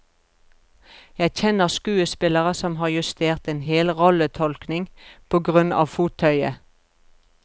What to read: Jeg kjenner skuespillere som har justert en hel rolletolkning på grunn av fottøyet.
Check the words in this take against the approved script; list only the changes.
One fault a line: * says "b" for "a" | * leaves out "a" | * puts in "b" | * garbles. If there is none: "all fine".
all fine